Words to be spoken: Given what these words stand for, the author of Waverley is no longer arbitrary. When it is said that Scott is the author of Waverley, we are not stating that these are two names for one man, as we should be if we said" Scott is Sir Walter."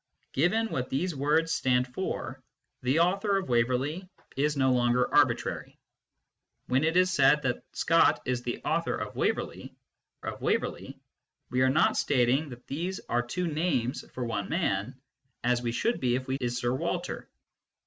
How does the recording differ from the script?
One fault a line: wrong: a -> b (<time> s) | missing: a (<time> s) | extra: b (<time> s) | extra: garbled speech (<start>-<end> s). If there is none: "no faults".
extra: of Waverley (10.2 s)
missing: said Scott (16.4 s)